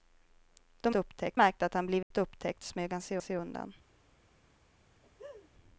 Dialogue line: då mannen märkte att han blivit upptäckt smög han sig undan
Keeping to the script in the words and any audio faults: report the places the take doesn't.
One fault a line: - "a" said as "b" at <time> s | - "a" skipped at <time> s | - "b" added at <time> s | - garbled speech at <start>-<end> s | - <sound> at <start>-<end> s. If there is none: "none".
- "mannen" said as "upptäckt" at 0.9 s
- dropout at 2.0-2.1 s
- "sig" added at 3.2 s
- laugh at 5.0-5.5 s